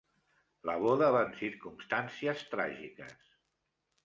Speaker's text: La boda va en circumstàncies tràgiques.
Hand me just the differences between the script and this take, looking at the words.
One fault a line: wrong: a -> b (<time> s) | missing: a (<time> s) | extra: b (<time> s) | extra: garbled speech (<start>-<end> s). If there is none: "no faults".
no faults